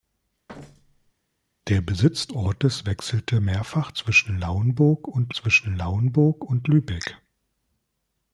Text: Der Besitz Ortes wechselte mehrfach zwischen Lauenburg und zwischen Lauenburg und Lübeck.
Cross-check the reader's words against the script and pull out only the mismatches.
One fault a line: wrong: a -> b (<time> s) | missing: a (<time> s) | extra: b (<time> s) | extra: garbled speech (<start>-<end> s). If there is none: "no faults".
no faults